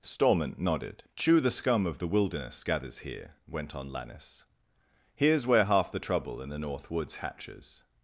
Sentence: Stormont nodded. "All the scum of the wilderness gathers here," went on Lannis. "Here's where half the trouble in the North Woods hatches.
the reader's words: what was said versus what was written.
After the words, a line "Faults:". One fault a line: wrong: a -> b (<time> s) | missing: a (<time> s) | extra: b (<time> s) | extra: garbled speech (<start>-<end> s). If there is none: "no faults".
Stormont nodded. "Chew the scum of the wilderness gathers here," went on Lannis. "Here's where half the trouble in the North Woods hatches.
Faults:
wrong: All -> Chew (1.1 s)